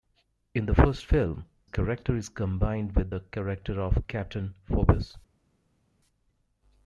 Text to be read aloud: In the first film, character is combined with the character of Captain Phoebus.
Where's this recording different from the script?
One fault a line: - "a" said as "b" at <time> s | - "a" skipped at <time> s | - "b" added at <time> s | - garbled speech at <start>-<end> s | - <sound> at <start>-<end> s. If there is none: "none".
none